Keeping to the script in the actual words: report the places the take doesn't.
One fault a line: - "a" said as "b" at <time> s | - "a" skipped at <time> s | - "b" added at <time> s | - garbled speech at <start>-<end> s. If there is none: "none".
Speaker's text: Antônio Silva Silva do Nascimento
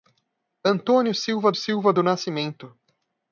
none